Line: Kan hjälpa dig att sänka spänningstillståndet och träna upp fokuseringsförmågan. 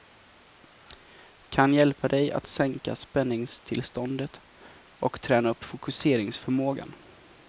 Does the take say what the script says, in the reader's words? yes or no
yes